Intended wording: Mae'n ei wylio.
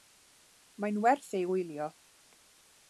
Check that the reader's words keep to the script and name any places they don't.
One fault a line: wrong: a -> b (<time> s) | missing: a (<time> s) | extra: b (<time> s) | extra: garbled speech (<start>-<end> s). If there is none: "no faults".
extra: werth (1.1 s)